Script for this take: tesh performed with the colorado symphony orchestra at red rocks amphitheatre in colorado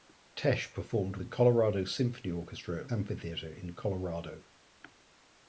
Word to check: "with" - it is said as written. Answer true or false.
false